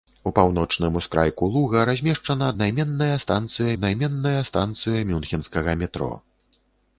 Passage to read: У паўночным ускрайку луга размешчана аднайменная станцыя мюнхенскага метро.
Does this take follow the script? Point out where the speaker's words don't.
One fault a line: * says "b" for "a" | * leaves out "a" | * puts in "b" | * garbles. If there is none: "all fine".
* puts in "аднайменная станцыя"